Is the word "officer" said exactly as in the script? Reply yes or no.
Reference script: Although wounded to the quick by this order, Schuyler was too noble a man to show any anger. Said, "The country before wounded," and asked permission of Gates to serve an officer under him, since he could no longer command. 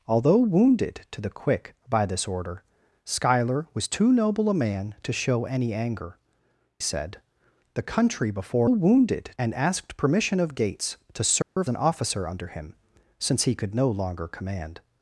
yes